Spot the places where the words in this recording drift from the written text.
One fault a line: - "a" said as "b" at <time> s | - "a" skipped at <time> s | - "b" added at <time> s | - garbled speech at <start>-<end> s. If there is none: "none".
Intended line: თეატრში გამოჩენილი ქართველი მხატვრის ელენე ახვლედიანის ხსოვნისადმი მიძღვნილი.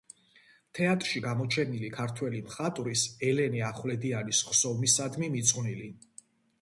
none